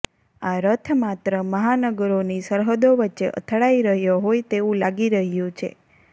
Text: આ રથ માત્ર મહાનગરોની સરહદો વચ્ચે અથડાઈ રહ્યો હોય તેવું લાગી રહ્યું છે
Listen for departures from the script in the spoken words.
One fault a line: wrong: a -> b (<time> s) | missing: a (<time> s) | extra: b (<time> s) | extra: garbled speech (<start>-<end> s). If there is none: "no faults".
no faults